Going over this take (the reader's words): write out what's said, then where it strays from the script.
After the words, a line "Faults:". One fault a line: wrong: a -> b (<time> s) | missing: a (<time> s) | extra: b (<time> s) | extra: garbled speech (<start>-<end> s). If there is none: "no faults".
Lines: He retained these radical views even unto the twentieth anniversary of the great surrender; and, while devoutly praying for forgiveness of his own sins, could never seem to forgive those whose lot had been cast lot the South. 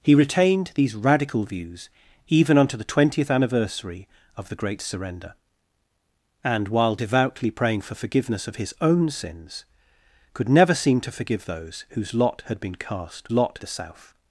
He retained these radical views even unto the twentieth anniversary of the great surrender; and, while devoutly praying for forgiveness of his own sins, could never seem to forgive those whose lot had been cast lot the South.
Faults:
no faults